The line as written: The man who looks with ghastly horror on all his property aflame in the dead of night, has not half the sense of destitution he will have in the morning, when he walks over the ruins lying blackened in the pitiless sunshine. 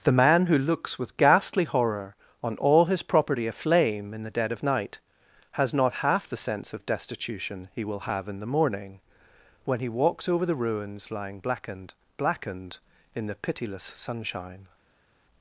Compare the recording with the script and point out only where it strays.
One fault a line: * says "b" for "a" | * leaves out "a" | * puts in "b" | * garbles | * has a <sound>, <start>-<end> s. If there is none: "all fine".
* puts in "blackened"